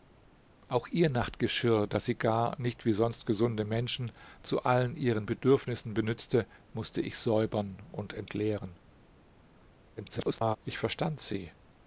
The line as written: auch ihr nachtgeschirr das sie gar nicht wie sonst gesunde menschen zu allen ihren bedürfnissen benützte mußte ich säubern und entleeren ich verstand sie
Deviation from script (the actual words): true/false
true